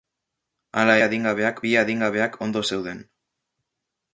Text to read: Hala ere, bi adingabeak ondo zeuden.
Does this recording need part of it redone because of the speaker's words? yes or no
yes